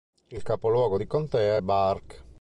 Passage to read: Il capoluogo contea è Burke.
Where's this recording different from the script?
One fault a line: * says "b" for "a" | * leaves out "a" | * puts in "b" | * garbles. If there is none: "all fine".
* puts in "di"